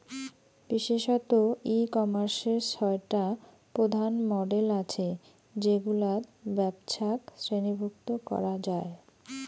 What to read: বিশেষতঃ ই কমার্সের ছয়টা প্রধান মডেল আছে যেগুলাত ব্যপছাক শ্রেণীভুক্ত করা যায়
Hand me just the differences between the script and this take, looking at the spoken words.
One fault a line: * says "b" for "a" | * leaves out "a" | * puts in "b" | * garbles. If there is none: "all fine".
all fine